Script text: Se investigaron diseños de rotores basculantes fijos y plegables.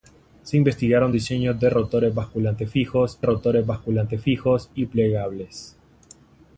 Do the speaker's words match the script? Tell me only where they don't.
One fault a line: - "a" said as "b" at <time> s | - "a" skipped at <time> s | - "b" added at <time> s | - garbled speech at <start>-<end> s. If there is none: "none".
- "rotores basculantes fijos" added at 3.2 s